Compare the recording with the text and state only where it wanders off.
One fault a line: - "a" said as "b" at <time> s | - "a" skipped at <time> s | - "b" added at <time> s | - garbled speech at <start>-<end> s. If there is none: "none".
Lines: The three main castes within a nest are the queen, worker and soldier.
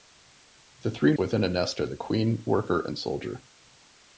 - "main castes" skipped at 1.1 s